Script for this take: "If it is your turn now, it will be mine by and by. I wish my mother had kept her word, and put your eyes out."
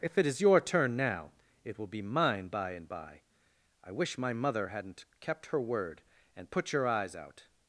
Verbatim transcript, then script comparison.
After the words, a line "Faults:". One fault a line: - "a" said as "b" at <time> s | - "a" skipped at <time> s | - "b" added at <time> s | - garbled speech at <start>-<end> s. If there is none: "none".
"If it is your turn now, it will be mine by and by. I wish my mother hadn't kept her word, and put your eyes out."
Faults:
- "had" said as "hadn't" at 4.7 s